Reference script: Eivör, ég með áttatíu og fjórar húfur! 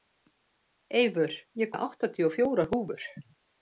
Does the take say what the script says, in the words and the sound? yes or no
yes